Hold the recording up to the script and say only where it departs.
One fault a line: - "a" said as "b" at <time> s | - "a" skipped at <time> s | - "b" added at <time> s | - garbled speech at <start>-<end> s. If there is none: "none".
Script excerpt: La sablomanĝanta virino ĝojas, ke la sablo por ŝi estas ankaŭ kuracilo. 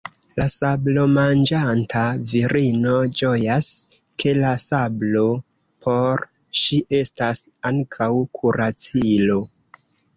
none